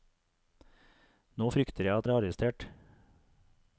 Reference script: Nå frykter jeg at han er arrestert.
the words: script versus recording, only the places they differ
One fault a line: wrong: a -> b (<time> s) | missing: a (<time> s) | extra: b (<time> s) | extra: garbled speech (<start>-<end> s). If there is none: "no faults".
missing: han (2.1 s)